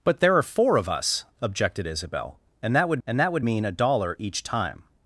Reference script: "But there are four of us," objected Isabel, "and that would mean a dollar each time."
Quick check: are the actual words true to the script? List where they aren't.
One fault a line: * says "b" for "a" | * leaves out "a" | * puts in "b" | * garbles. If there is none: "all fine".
* puts in "and that would"